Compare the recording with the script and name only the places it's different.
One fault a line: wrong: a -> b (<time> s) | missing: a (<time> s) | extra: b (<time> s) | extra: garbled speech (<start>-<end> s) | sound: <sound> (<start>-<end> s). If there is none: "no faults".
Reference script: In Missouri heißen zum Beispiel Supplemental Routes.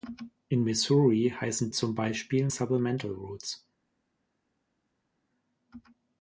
no faults